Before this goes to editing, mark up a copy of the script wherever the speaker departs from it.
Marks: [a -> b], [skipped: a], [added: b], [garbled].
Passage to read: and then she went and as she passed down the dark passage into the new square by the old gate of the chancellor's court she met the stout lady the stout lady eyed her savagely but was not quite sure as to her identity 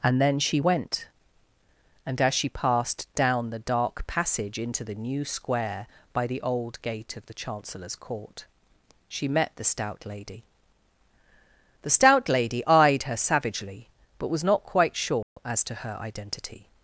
and then she went and as she passed down the dark passage into the new square by the old gate of the chancellor's court she met the stout lady the stout lady eyed her savagely but was not quite sure as to her identity